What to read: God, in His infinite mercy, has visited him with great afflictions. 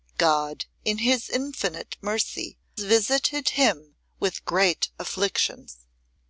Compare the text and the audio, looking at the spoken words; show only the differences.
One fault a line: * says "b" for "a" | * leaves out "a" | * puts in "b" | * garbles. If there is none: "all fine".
* leaves out "has"